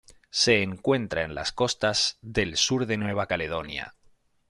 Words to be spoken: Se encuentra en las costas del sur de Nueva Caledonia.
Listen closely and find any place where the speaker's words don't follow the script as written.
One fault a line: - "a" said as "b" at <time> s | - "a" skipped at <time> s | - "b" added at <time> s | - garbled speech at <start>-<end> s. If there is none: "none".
none